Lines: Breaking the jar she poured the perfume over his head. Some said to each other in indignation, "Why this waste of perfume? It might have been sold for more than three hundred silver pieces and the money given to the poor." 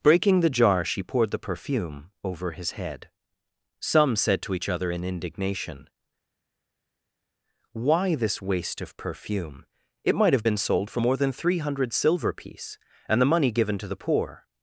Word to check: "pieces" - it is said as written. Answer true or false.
false